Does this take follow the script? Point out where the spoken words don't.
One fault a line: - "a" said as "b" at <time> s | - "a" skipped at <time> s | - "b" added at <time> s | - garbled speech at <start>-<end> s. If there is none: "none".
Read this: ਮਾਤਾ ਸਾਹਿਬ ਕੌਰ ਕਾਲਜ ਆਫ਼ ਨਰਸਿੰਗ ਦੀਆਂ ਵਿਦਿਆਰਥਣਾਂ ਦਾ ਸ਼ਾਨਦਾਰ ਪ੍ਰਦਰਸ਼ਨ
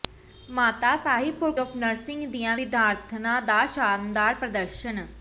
- "ਕਾਲਜ" skipped at 1.5 s